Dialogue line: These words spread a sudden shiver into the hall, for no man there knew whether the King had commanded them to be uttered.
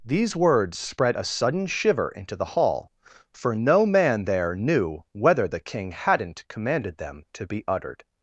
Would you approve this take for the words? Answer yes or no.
no